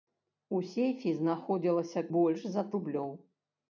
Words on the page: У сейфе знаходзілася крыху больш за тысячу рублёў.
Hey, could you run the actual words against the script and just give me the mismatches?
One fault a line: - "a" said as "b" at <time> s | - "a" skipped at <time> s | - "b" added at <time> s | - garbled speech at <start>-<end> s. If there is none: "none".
- "крыху" skipped at 2.0 s
- "тысячу" skipped at 2.7 s